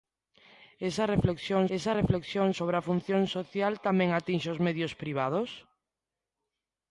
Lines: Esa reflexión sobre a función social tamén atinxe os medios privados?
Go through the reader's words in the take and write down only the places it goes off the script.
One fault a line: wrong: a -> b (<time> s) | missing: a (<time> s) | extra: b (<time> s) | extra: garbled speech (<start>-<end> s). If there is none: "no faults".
extra: esa reflexión (1.8 s)